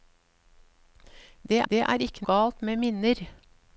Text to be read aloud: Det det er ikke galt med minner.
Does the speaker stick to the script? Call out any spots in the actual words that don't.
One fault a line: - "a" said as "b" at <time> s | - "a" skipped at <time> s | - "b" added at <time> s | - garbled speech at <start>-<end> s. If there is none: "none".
none